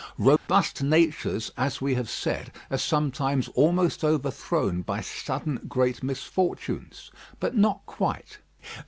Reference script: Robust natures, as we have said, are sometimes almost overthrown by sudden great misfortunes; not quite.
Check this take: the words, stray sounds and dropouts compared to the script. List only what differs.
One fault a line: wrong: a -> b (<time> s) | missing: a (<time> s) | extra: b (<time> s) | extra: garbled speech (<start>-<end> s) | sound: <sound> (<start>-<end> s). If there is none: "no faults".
sound: dropout (0.4-0.5 s)
extra: but (7.4 s)